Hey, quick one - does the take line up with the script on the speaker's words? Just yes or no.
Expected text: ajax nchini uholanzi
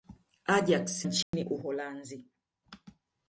yes